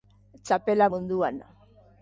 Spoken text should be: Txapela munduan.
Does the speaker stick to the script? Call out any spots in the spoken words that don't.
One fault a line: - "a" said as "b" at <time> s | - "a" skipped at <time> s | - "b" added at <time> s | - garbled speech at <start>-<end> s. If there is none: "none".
none